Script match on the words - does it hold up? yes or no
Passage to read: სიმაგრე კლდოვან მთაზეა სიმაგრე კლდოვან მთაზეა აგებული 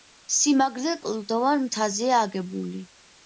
no